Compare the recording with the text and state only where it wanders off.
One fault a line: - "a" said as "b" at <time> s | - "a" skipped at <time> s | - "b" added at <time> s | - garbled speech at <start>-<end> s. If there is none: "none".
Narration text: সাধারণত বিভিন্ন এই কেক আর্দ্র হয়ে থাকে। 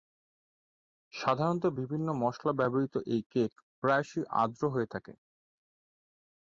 - "মশলা ব্যবহৃত" added at 2.2 s
- "প্রায়শই" added at 3.8 s